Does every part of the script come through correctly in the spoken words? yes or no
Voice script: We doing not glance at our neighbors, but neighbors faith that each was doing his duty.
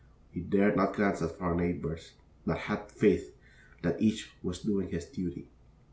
no